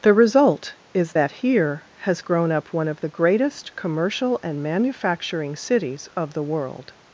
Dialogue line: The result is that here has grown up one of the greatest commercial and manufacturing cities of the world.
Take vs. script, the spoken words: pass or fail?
pass